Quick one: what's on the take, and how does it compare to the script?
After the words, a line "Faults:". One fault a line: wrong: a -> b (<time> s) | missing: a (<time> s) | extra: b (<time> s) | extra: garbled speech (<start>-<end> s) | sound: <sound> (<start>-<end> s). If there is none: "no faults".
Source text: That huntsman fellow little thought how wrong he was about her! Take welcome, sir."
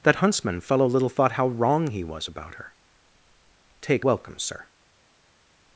That huntsman fellow little thought how wrong he was about her! Take welcome, sir."
Faults:
no faults